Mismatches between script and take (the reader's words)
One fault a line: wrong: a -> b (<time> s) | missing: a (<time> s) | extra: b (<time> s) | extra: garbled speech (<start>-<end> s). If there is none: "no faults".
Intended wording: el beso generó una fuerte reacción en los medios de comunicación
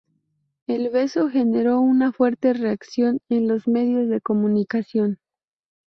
no faults